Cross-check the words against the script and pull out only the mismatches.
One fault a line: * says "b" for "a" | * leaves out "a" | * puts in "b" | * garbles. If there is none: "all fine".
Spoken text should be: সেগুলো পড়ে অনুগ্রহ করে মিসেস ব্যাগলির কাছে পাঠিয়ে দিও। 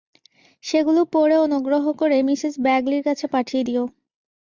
all fine